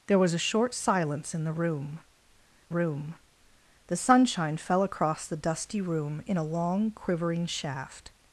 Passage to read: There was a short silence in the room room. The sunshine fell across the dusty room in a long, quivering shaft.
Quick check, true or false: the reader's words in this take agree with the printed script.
true